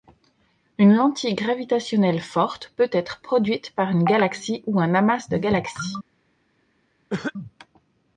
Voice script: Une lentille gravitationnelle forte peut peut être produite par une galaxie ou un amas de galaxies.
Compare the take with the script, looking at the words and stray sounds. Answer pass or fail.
fail